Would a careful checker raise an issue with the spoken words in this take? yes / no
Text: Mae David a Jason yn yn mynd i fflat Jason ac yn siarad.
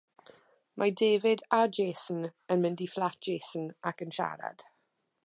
yes